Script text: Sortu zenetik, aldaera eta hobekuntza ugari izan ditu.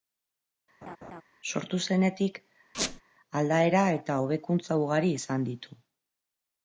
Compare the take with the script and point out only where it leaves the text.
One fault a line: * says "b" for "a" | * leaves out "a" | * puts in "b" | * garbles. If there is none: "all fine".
all fine